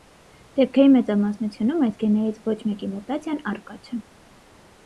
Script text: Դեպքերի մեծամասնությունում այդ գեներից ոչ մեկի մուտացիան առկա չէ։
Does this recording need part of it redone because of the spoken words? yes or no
yes